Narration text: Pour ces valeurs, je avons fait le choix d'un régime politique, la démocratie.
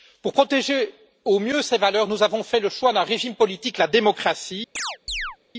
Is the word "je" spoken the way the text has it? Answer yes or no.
no